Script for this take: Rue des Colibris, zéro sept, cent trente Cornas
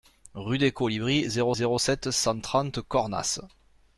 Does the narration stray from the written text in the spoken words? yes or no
yes